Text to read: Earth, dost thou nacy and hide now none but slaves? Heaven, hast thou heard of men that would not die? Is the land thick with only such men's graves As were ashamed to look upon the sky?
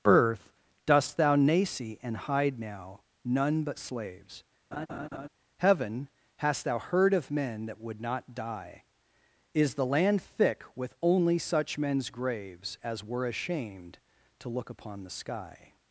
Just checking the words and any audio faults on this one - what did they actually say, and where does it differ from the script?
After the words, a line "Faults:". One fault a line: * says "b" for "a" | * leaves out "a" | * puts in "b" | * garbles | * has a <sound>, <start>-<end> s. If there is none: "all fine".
Earth, dost thou nacy and hide now none but slaves? Heaven, hast thou heard of men that would not die? Is the land thick with only such men's graves As were ashamed to look upon the sky?
Faults:
* has a laugh, 4.7-5.3 s